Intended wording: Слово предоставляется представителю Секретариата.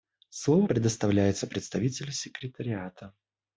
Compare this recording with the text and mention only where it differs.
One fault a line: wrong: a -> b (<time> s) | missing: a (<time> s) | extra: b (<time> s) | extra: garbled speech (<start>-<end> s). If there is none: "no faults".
no faults